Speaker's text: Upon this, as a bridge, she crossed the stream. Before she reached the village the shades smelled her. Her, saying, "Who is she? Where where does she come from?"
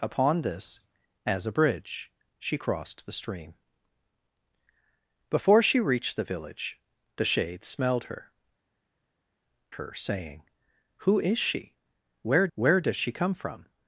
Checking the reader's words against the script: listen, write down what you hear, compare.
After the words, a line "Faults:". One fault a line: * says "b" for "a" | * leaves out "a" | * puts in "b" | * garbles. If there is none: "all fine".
Upon this, as a bridge, she crossed the stream. Before she reached the village the shades smelled her. Her, saying, "Who is she? Where where does she come from?"
Faults:
all fine